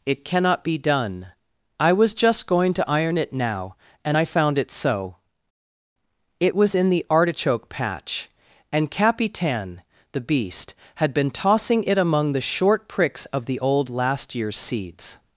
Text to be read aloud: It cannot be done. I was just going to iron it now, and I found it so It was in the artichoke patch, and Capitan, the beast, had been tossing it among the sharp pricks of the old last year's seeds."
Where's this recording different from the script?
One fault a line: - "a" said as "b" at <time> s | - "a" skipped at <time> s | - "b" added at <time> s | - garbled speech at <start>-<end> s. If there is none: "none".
- "sharp" said as "short" at 12.4 s